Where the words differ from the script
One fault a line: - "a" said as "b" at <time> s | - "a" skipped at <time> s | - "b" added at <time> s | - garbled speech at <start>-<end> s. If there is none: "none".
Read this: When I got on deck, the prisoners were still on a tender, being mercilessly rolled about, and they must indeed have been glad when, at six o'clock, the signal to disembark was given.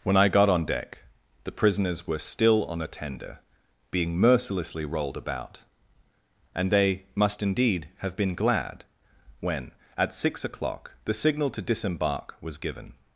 none